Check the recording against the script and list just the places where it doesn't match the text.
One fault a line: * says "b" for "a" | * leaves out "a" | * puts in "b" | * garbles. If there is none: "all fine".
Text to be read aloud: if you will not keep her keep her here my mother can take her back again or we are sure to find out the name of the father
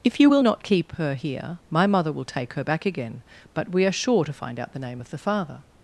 * leaves out "keep her"
* says "will" for "can"
* says "but" for "or"